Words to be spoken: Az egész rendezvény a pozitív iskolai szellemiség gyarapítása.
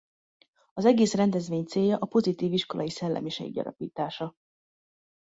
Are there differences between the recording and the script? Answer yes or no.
yes